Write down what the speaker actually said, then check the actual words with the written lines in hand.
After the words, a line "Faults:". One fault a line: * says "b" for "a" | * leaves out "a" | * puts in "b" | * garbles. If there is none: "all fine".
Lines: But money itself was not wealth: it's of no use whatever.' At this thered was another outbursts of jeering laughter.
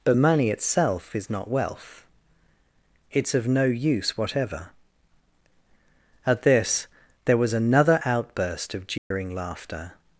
But money itself is not wealth: it's of no use whatever.' At this there was another outburst of jeering laughter.
Faults:
* says "is" for "was"
* says "there" for "thered"
* says "outburst" for "outbursts"